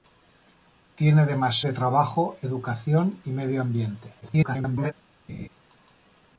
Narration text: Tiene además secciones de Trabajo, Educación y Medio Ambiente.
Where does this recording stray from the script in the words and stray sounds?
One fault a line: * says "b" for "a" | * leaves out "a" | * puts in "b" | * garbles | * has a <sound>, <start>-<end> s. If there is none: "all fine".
* leaves out "secciones"
* garbles
* has a laugh, 5.3-5.5 s